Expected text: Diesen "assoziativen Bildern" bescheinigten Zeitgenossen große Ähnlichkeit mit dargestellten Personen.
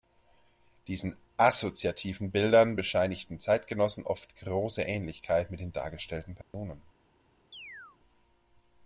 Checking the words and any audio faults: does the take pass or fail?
fail